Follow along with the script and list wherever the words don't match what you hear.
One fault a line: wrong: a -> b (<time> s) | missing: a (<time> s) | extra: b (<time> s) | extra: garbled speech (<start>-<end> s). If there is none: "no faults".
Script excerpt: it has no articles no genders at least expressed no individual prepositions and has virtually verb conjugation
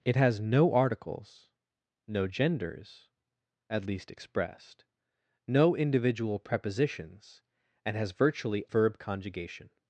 no faults